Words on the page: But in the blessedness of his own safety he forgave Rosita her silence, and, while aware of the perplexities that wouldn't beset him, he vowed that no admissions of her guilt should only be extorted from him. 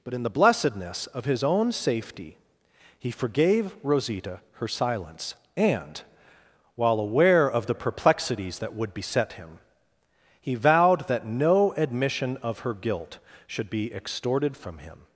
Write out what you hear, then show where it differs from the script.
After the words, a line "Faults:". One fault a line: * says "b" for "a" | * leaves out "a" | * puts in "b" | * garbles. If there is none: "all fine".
But in the blessedness of his own safety he forgave Rosita her silence, and, while aware of the perplexities that would beset him, he vowed that no admission of her guilt should be extorted from him.
Faults:
* says "would" for "wouldn't"
* says "admission" for "admissions"
* leaves out "only"